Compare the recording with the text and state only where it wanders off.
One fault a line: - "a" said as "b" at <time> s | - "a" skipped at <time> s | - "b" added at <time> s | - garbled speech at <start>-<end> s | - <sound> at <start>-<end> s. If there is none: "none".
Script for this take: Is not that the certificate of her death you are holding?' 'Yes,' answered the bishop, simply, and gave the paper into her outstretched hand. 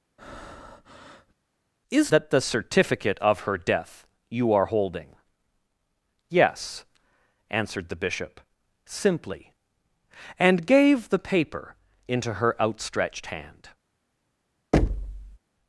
- breath at 0.2-1.3 s
- "not" skipped at 2.1 s
- thud at 14.7-15.4 s